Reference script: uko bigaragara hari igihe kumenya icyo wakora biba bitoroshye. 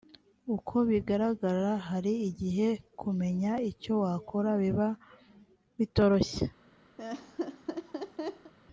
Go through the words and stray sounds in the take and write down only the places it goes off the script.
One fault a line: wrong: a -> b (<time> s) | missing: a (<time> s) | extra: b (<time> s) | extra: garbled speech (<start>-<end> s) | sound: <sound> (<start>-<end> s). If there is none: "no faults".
sound: laugh (7.0-8.5 s)